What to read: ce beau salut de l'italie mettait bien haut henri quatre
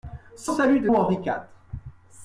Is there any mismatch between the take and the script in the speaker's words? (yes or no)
yes